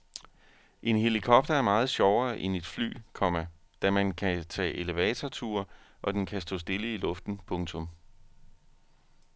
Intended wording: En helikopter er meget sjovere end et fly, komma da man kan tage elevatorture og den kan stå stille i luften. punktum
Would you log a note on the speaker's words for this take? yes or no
no